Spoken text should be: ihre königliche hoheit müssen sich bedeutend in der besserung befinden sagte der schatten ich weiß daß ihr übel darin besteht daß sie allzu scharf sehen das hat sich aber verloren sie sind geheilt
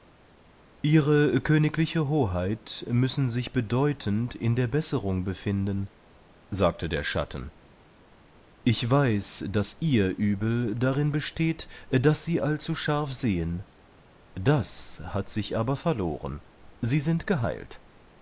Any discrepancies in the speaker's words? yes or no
no